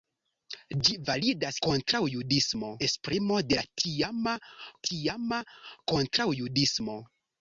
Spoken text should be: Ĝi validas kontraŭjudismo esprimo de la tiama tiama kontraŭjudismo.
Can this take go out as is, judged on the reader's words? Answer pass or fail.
pass